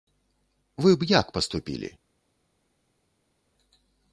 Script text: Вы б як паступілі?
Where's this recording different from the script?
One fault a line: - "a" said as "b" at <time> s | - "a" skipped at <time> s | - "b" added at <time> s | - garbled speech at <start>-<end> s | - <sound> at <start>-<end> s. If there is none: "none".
none